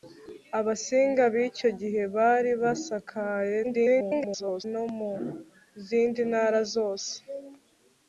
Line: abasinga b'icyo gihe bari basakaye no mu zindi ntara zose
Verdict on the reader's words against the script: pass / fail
fail